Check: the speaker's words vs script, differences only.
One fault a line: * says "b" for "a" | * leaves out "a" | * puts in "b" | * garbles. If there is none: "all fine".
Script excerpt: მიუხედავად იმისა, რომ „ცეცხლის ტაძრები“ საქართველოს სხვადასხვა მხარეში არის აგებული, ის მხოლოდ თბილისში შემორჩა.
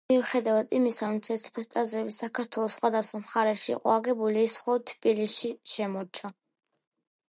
* says "იყო" for "არის"